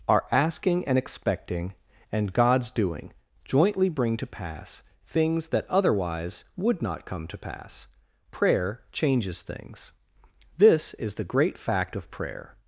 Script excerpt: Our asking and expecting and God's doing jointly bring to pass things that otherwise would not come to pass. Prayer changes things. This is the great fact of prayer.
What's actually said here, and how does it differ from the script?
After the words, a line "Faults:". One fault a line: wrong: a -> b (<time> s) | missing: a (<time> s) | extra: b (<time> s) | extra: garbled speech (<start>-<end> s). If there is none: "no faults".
Our asking and expecting and God's doing jointly bring to pass things that otherwise would not come to pass. Prayer changes things. This is the great fact of prayer.
Faults:
no faults